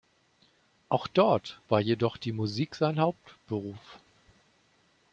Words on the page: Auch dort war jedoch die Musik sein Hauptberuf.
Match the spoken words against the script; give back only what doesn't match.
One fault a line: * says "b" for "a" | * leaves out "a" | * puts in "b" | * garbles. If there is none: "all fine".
all fine